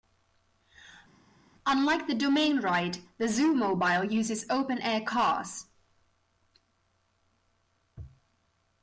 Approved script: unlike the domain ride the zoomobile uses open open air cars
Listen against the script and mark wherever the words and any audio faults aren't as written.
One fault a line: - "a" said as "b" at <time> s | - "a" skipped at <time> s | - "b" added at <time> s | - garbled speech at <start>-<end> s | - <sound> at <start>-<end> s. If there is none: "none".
- "open" skipped at 4.8 s